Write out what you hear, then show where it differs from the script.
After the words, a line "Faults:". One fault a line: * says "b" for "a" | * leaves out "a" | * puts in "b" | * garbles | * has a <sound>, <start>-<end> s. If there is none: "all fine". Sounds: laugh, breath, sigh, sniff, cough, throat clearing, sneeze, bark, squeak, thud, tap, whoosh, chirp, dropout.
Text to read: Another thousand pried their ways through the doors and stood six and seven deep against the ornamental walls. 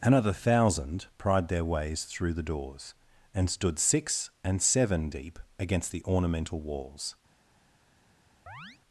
Another thousand pried their ways through the doors and stood six and seven deep against the ornamental walls.
Faults:
* has a chirp, 8.5-8.8 s